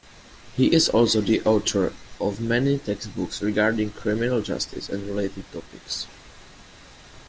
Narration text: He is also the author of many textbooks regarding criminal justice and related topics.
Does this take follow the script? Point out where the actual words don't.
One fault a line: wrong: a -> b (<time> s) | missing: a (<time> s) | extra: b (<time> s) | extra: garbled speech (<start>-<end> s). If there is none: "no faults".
no faults